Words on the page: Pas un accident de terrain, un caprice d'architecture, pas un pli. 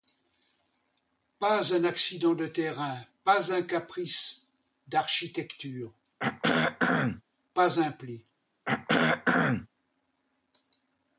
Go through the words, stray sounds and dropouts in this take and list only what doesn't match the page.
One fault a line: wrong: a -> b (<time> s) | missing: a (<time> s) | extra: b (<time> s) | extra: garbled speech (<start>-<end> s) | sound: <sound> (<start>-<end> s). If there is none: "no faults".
extra: pas (3.2 s)
sound: throat clearing (6.2-7.2 s)
sound: throat clearing (8.6-9.7 s)